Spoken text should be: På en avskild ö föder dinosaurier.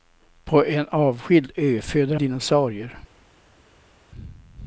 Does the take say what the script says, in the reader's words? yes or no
yes